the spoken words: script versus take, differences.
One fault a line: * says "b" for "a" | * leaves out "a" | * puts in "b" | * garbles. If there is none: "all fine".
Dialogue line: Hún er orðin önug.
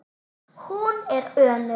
* leaves out "orðin"